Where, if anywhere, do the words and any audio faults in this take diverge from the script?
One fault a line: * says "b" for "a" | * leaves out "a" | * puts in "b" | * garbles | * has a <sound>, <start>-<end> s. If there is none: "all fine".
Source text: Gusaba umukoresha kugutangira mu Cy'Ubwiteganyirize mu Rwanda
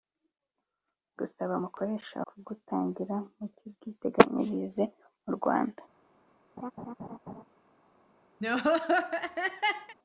* has a laugh, 6.6-7.4 s
* has a laugh, 8.4-9.9 s